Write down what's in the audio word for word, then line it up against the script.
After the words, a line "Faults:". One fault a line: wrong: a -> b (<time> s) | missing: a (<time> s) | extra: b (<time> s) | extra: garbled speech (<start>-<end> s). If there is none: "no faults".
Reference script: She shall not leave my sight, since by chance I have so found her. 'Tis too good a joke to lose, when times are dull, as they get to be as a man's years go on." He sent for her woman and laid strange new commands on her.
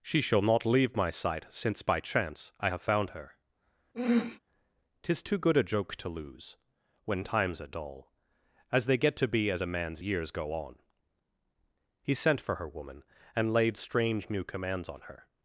She shall not leave my sight, since by chance I have found her. 'Tis too good a joke to lose, when times are dull, as they get to be as a man's years go on." He sent for her woman and laid strange new commands on her.
Faults:
missing: so (2.8 s)